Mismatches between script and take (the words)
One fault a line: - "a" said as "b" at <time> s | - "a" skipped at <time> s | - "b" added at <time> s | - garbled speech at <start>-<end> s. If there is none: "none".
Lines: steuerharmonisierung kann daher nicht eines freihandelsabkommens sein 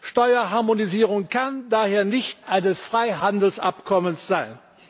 none